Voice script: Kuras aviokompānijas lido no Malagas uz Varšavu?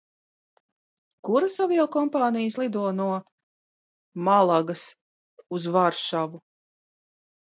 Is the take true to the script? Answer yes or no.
yes